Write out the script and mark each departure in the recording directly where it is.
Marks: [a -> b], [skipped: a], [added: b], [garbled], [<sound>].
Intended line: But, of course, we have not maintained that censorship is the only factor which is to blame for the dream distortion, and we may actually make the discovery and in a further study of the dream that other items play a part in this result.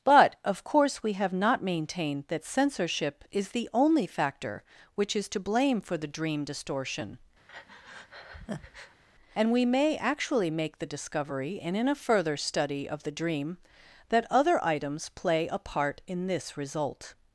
But, of course, we have not maintained that censorship is the only factor which is to blame for the dream distortion, [breath] and we may actually make the discovery and in a further study of the dream that other items play a part in this result.